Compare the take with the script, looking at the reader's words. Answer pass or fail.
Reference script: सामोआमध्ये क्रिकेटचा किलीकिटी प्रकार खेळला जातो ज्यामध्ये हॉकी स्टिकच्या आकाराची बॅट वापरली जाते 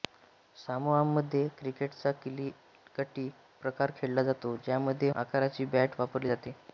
fail